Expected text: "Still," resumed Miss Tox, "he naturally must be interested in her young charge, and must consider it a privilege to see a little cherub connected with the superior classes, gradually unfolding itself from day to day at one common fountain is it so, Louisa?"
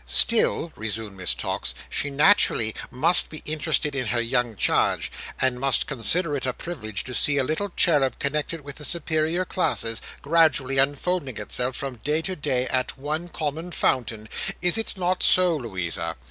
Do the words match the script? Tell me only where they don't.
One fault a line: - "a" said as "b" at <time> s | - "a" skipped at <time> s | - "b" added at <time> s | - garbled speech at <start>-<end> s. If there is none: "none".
- "he" said as "she" at 1.9 s
- "not" added at 15.0 s